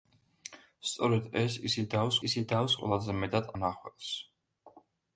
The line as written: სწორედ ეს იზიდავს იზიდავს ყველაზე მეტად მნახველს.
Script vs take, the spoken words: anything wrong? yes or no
no